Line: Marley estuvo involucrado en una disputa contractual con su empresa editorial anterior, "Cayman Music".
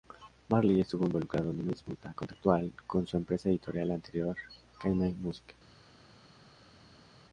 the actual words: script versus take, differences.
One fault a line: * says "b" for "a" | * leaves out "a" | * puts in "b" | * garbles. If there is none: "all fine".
all fine